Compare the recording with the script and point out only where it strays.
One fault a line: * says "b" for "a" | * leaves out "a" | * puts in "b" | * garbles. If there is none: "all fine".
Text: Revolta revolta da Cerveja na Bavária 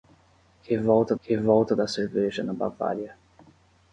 all fine